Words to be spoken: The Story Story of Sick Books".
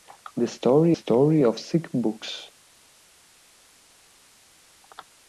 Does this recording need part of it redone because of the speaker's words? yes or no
no